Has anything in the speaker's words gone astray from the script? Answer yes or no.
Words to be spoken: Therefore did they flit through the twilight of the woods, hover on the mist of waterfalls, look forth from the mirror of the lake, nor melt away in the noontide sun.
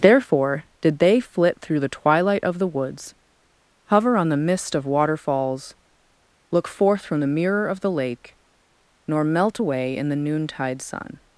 no